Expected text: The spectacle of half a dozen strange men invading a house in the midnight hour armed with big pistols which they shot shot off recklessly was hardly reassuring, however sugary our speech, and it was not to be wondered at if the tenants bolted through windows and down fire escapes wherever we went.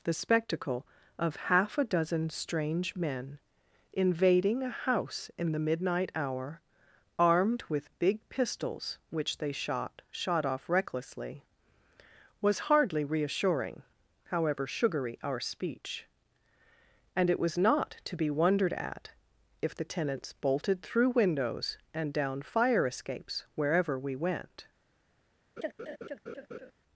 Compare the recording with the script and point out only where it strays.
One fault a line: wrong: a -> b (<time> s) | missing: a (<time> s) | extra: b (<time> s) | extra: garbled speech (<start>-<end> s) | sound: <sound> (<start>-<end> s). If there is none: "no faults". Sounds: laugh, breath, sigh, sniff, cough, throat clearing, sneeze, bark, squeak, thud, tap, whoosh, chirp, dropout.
sound: laugh (25.6-26.7 s)